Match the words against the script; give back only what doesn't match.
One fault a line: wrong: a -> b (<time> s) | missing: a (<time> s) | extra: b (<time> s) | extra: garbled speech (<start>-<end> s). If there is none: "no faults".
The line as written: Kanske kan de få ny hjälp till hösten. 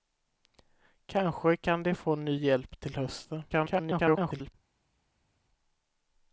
extra: garbled speech (3.5-4.5 s)